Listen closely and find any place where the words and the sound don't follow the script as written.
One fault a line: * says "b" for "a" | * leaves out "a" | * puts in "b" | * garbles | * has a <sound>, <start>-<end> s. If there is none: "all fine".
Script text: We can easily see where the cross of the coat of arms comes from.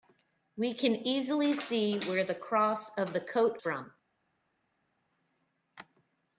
* leaves out "of arms comes"